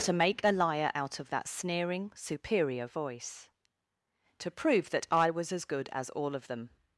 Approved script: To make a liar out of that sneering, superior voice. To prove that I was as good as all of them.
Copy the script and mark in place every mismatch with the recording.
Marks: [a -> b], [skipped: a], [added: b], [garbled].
To make a liar out of that sneering, superior voice. To prove that I was as good as all of them.